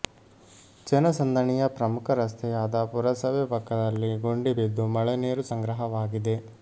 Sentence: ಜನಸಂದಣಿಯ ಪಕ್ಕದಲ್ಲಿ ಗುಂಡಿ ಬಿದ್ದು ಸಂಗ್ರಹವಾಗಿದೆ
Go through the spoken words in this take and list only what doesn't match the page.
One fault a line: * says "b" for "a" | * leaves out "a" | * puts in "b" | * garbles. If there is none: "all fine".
* puts in "ಪ್ರಮುಖ ರಸ್ತೆಯಾದ ಪುರಸಭೆ"
* puts in "ಮಳೆ ನೀರು"